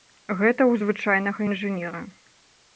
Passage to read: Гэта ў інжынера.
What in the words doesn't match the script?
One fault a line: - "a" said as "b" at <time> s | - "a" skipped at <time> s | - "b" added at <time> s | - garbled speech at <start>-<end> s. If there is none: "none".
- "звычайнага" added at 0.8 s